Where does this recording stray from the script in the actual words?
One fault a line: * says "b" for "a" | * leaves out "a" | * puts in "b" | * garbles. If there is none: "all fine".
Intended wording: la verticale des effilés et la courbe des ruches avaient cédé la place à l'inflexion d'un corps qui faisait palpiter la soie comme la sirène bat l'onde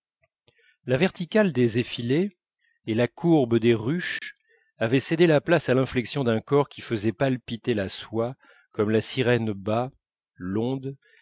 all fine